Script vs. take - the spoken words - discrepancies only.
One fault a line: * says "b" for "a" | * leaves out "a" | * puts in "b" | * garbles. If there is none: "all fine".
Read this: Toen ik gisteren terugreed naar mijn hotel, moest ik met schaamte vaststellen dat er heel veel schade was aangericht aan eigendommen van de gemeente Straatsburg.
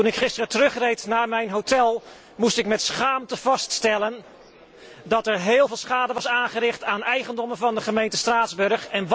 all fine